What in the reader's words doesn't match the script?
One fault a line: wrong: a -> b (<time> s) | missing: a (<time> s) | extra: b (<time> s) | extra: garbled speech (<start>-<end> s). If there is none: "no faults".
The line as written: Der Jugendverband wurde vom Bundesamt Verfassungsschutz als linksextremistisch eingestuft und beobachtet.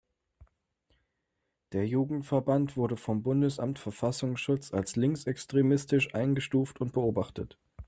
no faults